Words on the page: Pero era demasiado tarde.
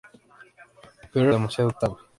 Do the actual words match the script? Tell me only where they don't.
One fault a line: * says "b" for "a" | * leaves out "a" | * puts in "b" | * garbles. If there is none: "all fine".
* leaves out "era"